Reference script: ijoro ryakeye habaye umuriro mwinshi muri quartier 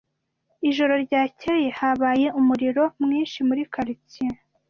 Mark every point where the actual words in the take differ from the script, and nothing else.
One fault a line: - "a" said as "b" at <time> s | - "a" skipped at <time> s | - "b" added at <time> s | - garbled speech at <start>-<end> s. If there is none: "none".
none